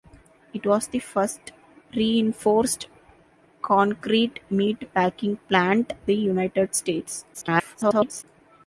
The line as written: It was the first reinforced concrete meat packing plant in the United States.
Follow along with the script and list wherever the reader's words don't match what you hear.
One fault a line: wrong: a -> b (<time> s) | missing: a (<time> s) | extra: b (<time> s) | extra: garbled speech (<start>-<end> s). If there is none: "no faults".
missing: in (5.9 s)
extra: garbled speech (7.3-8.2 s)